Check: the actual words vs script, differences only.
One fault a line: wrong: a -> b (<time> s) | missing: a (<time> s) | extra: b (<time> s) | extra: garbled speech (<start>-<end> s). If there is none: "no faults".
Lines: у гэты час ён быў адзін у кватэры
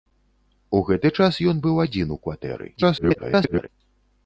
extra: garbled speech (2.8-3.7 s)